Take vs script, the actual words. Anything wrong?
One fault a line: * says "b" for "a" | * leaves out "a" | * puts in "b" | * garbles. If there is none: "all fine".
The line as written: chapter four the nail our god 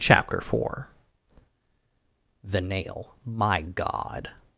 * says "my" for "our"